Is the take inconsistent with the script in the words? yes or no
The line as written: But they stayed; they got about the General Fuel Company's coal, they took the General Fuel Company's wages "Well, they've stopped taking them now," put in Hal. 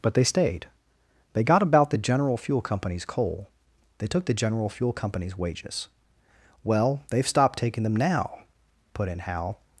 no